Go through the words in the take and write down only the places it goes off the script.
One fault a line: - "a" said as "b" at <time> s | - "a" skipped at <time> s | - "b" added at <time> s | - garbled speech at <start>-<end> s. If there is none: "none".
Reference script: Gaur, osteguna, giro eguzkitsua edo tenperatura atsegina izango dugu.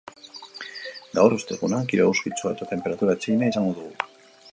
- "edo" said as "eta" at 2.6 s